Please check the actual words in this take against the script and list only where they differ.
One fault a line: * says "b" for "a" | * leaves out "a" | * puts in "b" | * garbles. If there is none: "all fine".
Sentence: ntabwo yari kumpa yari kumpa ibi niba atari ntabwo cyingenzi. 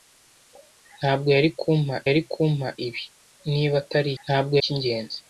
all fine